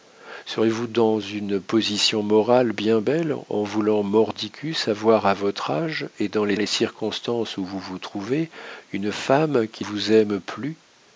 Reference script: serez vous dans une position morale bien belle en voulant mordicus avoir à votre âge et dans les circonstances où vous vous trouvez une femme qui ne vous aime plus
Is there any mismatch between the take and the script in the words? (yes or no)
yes